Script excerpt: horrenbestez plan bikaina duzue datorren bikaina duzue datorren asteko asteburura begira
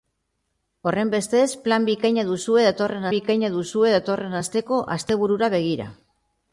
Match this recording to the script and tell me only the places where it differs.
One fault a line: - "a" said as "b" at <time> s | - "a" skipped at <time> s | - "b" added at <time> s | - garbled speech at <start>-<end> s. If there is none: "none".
none